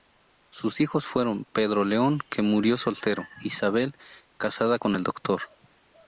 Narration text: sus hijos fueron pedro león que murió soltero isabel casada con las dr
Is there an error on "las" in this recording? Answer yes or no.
yes